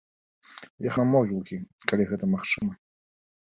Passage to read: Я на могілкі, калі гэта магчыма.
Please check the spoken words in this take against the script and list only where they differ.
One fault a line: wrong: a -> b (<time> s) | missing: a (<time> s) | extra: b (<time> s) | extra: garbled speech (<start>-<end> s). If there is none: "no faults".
no faults